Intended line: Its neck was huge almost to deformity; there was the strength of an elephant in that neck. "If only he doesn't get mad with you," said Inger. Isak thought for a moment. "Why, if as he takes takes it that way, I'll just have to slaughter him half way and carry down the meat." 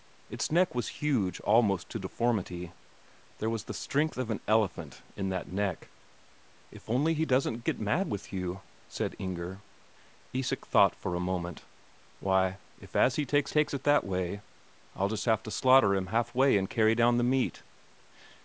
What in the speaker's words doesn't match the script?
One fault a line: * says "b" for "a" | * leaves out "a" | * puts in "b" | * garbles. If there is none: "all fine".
all fine